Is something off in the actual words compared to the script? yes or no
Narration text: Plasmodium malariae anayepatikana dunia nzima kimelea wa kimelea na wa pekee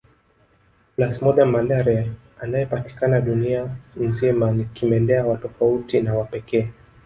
yes